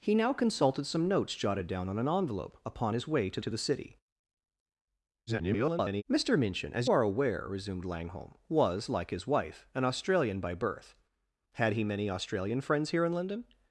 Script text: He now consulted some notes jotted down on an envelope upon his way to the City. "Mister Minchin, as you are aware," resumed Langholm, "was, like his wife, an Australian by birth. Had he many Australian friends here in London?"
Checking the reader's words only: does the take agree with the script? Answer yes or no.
no